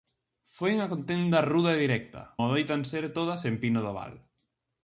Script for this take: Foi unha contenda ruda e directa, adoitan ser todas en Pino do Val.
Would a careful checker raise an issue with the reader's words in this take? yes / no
no